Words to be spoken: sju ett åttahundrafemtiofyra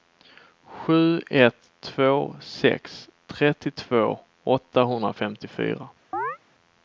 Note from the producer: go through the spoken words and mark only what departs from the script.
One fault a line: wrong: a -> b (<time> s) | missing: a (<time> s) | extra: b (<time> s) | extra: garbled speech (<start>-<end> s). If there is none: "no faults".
extra: två sex trettiotvå (1.8 s)